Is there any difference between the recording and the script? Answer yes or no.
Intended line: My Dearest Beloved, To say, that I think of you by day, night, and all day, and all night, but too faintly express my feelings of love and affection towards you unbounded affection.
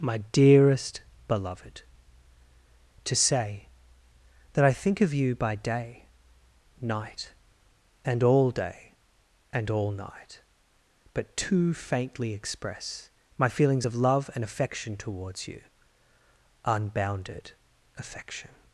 no